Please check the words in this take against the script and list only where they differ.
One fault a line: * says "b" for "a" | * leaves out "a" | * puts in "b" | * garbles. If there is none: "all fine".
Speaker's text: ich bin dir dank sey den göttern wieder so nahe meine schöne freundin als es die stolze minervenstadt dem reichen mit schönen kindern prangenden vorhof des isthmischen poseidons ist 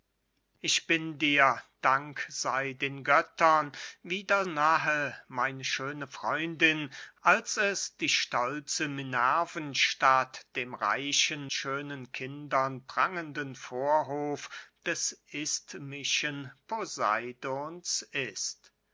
* leaves out "so"
* leaves out "mit"